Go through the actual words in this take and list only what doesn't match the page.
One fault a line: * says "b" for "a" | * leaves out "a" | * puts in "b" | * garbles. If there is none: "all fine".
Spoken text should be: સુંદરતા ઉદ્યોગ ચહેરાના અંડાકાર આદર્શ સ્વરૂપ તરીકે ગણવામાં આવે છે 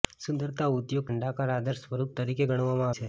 * leaves out "ચહેરાના"
* leaves out "આવે"